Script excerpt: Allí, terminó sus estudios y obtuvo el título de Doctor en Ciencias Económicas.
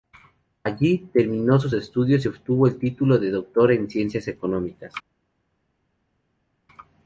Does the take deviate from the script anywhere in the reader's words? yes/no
no